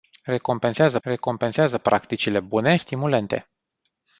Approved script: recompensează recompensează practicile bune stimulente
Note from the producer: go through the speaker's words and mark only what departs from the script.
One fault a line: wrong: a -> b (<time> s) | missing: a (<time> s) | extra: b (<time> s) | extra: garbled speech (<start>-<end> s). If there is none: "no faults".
no faults